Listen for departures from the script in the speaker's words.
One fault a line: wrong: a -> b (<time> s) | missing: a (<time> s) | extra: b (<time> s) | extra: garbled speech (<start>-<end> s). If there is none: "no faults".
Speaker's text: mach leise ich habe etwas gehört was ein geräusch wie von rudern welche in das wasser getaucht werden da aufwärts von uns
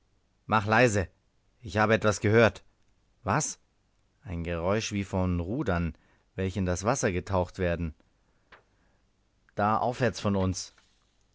no faults